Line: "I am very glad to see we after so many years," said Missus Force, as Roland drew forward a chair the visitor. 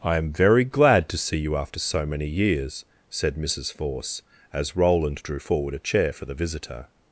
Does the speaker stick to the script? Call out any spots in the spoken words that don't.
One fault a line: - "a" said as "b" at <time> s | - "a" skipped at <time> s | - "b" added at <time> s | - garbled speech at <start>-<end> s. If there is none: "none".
- "we" said as "you" at 1.4 s
- "for" added at 6.1 s